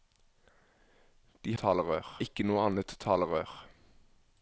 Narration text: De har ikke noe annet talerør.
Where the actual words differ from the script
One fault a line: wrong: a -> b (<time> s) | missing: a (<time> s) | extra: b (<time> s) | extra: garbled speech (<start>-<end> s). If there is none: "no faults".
wrong: har -> talerør (1.6 s)